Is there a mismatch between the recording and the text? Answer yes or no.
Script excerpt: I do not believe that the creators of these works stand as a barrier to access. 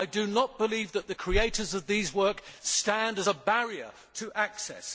no